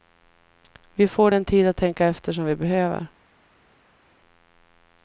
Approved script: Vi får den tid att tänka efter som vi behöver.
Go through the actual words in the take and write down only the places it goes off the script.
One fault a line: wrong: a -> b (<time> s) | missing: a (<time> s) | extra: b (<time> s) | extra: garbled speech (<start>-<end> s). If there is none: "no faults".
no faults